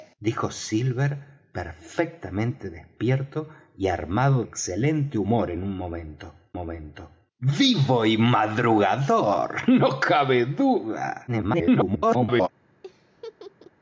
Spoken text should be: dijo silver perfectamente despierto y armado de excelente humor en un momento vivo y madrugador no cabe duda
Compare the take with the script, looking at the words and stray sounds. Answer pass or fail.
fail